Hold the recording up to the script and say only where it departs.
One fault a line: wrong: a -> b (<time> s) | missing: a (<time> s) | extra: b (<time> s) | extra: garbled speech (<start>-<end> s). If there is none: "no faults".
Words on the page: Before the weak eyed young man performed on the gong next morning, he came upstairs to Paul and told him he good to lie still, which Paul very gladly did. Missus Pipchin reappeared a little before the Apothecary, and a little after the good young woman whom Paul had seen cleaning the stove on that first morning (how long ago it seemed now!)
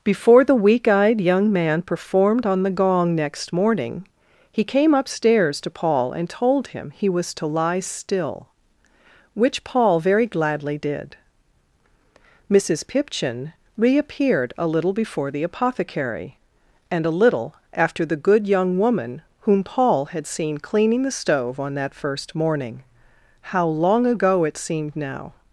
wrong: good -> was (7.1 s)